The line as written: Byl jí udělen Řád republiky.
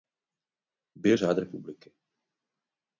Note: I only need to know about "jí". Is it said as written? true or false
false